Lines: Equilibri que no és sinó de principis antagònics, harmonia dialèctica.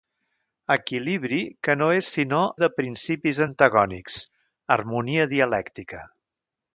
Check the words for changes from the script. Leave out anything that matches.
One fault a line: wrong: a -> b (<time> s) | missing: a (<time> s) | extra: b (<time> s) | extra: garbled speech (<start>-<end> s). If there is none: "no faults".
no faults